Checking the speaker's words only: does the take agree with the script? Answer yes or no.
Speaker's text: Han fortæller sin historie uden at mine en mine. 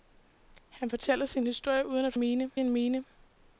yes